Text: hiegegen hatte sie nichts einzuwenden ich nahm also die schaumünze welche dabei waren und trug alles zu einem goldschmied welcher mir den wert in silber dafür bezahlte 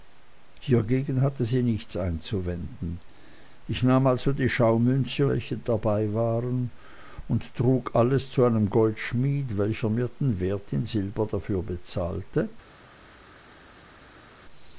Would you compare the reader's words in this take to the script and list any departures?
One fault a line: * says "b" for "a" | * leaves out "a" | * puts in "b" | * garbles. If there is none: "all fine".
all fine